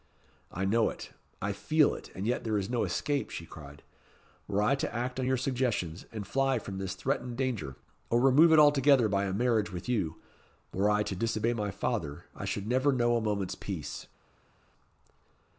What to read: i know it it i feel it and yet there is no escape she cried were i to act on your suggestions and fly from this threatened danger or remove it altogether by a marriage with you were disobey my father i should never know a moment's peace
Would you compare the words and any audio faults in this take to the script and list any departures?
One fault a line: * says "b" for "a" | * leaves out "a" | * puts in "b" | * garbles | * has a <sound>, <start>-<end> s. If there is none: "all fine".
* leaves out "it"
* puts in "i to"